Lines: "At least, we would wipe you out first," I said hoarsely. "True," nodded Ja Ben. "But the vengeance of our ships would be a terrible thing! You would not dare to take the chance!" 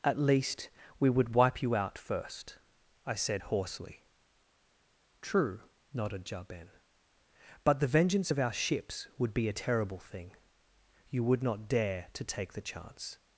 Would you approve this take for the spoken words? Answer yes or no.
yes